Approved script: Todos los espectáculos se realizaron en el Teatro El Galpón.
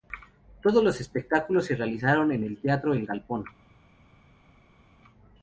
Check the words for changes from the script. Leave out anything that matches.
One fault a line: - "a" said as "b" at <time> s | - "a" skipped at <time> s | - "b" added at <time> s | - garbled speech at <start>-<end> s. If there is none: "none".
none